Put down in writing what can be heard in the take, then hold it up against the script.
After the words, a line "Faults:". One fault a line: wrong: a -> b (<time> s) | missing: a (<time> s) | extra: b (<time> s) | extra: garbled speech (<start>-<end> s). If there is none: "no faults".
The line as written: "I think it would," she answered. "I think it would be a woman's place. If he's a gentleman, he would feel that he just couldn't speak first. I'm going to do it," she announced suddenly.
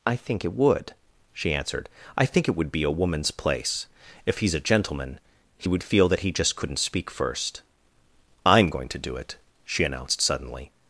"I think it would," she answered. "I think it would be a woman's place. If he's a gentleman, he would feel that he just couldn't speak first. I'm going to do it," she announced suddenly.
Faults:
no faults